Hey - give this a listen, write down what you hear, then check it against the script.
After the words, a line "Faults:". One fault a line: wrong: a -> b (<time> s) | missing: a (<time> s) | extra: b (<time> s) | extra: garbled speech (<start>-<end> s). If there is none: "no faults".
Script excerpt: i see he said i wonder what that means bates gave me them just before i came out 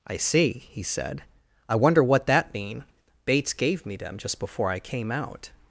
i see he said i wonder what that mean bates gave me them just before i came out
Faults:
wrong: means -> mean (2.5 s)